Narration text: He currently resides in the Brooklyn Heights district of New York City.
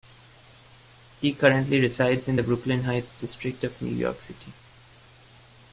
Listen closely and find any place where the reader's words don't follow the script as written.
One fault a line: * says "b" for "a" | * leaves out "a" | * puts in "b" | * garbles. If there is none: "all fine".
all fine